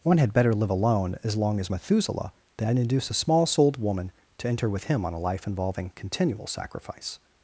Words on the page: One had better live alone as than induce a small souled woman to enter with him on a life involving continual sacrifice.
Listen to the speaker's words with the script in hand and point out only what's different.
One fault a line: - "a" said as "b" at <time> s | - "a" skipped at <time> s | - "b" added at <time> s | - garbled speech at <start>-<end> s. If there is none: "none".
- "long as Methuselah" added at 1.4 s